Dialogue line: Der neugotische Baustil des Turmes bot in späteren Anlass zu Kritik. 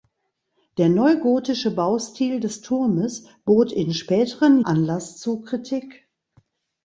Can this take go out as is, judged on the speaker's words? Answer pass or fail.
pass